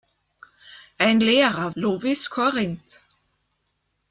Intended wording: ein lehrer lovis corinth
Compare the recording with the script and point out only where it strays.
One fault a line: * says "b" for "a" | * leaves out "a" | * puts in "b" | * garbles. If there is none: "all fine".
all fine